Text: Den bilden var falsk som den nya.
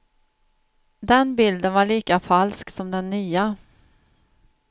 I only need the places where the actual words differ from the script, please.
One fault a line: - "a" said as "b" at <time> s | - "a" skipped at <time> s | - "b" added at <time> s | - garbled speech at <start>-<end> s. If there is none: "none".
- "lika" added at 1.9 s